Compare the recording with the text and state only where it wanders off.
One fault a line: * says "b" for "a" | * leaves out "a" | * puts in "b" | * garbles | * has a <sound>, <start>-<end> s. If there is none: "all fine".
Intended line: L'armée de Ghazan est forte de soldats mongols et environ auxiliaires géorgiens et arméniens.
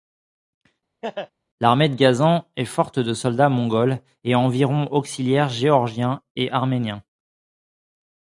* has a laugh, 1.0-1.3 s